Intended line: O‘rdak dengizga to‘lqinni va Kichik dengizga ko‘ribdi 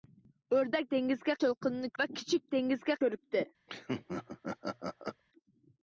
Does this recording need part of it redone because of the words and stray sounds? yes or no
yes